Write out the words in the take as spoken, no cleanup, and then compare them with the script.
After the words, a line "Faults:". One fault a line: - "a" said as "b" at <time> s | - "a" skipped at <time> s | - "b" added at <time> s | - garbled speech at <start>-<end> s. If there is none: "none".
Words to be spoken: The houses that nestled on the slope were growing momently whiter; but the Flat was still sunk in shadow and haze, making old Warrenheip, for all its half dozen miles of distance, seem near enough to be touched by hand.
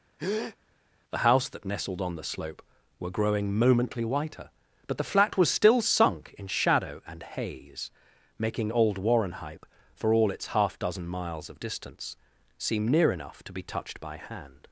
The house that nestled on the slope were growing momently whiter; but the Flat was still sunk in shadow and haze, making old Warrenheip, for all its half dozen miles of distance, seem near enough to be touched by hand.
Faults:
- "houses" said as "house" at 1.2 s